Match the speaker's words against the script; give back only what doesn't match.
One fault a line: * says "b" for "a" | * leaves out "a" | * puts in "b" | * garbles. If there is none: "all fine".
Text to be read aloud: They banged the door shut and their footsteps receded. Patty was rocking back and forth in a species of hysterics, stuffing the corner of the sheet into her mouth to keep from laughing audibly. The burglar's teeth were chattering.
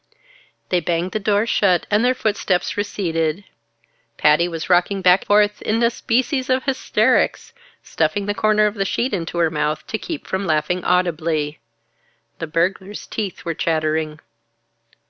* leaves out "and"